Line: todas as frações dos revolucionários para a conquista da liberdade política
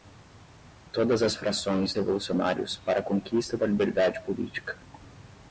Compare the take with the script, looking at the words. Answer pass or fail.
fail